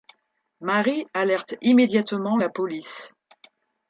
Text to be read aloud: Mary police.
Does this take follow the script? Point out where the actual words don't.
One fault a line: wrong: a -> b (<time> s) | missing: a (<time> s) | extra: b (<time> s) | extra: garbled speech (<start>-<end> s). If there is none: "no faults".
extra: alerte immédiatement la (1.1 s)